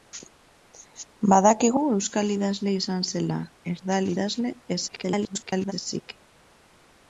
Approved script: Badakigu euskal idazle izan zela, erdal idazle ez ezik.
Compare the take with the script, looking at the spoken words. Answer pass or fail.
fail